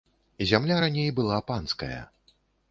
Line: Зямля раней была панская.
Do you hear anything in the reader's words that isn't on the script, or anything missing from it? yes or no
no